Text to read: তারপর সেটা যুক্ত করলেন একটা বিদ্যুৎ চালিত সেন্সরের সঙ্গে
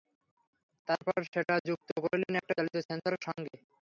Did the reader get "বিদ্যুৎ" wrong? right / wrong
wrong